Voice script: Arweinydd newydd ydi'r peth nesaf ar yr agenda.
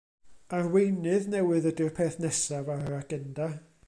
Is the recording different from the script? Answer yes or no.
no